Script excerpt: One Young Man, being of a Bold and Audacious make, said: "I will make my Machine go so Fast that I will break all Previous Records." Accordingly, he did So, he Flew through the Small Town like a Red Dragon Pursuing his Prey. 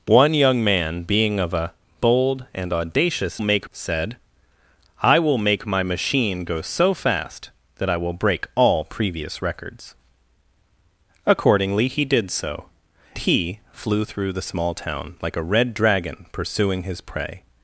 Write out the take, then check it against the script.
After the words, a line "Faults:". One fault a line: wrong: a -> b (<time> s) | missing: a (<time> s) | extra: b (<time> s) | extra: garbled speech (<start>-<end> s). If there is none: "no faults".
One Young Man, being of a Bold and Audacious make, said: "I will make my Machine go so Fast that I will break all Previous Records." Accordingly, he did So, he Flew through the Small Town like a Red Dragon Pursuing his Prey.
Faults:
no faults